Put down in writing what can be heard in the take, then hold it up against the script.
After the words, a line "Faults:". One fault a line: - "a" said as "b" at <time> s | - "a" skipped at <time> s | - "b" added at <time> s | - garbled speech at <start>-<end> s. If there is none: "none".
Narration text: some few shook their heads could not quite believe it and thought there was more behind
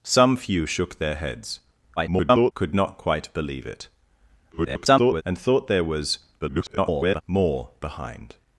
some few shook their heads [garbled] could not quite believe it [garbled] and thought there was [garbled] more behind
Faults:
- garbled speech at 2.0-2.5 s
- garbled speech at 4.5-5.2 s
- garbled speech at 6.4-7.2 s